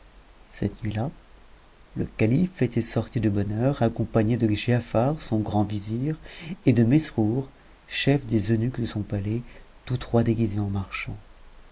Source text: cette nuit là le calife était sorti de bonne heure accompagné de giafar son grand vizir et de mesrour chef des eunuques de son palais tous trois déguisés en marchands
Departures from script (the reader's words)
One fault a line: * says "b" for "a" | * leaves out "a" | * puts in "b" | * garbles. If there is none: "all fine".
all fine